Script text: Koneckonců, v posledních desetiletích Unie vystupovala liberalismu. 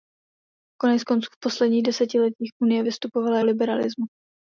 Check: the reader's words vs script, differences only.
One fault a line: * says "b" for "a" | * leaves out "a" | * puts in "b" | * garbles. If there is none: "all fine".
all fine